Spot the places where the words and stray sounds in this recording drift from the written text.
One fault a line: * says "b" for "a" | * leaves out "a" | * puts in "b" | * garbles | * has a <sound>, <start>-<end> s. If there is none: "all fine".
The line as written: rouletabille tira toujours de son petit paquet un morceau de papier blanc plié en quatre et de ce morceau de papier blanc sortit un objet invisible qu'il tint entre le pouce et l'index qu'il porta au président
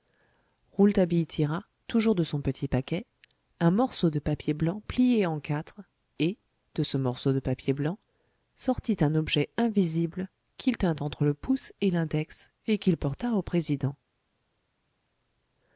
* puts in "et"